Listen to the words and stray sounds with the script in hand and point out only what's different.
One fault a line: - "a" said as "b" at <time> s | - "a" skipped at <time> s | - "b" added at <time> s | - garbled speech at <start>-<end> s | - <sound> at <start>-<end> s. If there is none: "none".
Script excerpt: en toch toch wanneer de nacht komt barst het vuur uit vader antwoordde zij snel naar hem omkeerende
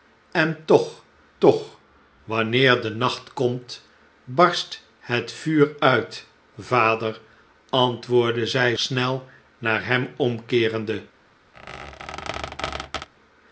- squeak at 11.5-13.1 s